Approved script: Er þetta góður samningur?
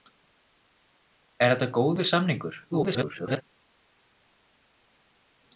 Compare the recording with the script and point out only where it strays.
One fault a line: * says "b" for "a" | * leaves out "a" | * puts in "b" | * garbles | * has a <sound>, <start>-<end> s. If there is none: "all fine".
* garbles